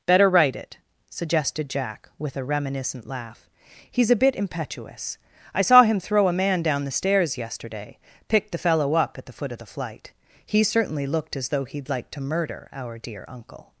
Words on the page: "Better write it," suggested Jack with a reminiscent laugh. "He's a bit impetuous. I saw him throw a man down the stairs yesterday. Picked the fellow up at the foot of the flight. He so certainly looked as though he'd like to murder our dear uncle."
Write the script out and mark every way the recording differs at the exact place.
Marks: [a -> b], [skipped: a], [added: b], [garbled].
"Better write it," suggested Jack with a reminiscent laugh. "He's a bit impetuous. I saw him throw a man down the stairs yesterday. Picked the fellow up at the foot of the flight. He [skipped: so] certainly looked as though he'd like to murder our dear uncle."